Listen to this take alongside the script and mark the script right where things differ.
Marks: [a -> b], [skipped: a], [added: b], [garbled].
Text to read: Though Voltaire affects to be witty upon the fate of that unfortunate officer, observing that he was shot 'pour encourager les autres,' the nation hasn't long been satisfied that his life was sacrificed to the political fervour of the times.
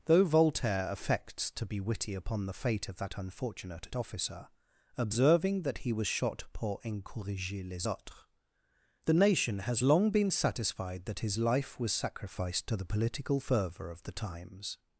Though Voltaire affects to be witty upon the fate of that unfortunate officer, observing that he was shot 'pour encourager les autres,' the nation [hasn't -> has] long been satisfied that his life was sacrificed to the political fervour of the times.